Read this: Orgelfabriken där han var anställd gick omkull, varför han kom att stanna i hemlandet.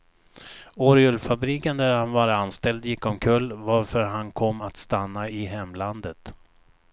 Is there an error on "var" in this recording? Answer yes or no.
no